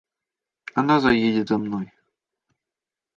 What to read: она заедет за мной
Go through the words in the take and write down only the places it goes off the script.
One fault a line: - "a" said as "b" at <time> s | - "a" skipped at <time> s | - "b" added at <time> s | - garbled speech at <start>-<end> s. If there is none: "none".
none